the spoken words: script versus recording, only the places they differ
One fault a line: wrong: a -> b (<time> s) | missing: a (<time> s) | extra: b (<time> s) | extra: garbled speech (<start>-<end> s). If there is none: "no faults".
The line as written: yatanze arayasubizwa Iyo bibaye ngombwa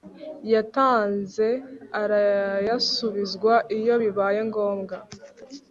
no faults